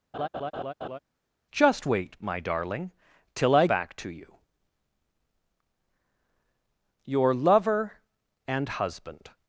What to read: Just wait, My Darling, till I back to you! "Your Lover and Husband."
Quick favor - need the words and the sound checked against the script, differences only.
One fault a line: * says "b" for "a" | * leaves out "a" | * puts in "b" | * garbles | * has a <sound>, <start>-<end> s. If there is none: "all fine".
* has a laugh, 0.1-1.0 s